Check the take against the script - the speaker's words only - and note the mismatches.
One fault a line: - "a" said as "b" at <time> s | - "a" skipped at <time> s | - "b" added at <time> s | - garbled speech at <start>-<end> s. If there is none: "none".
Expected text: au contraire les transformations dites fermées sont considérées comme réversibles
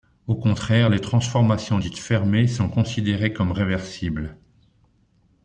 none